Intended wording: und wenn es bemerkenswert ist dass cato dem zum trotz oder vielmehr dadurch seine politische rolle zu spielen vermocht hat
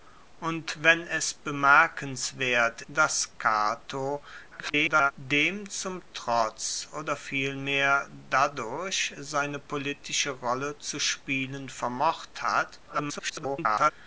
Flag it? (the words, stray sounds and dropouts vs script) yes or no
yes